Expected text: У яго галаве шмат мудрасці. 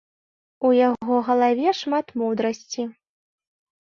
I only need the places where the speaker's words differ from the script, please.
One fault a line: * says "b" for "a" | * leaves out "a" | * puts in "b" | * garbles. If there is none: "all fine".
all fine